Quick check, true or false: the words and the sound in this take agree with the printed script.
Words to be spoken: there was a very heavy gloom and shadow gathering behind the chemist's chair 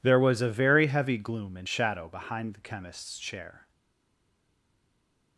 false